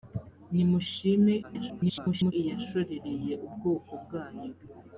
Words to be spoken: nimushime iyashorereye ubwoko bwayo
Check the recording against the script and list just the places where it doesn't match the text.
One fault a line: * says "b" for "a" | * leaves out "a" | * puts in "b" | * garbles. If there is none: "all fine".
* garbles